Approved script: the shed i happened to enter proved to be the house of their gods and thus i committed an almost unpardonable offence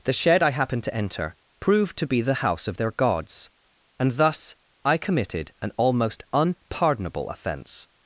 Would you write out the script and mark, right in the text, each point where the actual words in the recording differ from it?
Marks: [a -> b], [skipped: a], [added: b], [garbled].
the shed i happened to enter proved to be the house of their gods and thus i committed an almost unpardonable offence